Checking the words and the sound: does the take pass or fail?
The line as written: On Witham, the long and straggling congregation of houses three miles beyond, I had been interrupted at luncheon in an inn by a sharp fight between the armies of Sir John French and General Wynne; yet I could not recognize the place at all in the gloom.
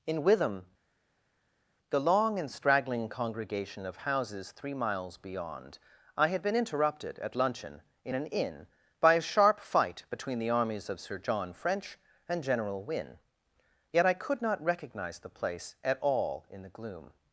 fail